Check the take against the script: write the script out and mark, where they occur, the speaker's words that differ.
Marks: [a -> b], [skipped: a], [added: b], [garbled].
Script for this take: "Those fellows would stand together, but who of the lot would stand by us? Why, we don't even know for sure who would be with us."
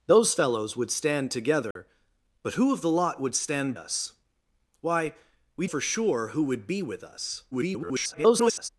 "Those fellows would stand together, but who of the lot would stand [skipped: by] us? Why, we [skipped: don't even know] for sure who would be with us." [garbled]